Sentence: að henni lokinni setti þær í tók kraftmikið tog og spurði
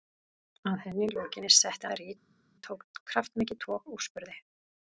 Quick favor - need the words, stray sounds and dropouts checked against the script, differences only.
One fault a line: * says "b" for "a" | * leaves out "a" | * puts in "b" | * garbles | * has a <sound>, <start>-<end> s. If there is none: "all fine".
all fine